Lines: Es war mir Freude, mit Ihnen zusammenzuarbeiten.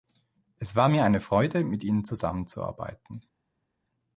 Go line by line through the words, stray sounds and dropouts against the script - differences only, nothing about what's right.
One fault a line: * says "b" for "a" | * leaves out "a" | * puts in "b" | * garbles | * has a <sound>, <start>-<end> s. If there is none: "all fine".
* puts in "eine"